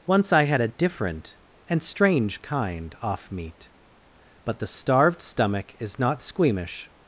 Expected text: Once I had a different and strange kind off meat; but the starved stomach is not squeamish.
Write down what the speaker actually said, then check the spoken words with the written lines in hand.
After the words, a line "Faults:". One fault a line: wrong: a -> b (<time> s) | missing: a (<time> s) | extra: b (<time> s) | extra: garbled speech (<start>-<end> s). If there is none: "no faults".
Once I had a different and strange kind off meat; but the starved stomach is not squeamish.
Faults:
no faults